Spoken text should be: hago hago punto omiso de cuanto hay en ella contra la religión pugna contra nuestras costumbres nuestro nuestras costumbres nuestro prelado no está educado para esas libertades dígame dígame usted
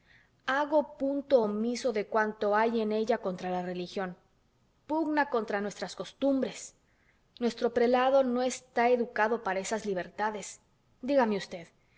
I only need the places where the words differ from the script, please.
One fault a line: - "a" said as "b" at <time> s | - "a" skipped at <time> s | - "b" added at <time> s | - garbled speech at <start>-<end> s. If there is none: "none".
- "hago" skipped at 1.0 s
- "nuestras costumbres nuestro" skipped at 7.7 s
- "dígame" skipped at 11.4 s